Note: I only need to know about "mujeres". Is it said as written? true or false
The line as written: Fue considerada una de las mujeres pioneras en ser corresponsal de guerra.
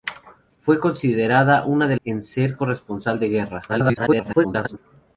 false